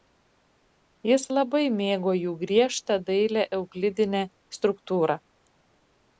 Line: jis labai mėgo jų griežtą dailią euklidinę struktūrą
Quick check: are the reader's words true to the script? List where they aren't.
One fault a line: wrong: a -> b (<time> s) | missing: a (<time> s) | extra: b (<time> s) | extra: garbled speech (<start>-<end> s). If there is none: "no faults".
no faults